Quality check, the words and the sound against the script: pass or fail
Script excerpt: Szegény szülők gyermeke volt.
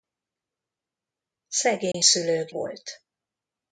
fail